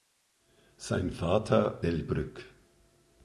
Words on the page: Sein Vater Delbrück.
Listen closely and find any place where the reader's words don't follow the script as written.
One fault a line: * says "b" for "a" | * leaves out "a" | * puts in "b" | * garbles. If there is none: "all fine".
all fine